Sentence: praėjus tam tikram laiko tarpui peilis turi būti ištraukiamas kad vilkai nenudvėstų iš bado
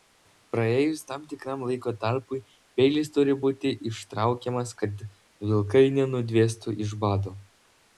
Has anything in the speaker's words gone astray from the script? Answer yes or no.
no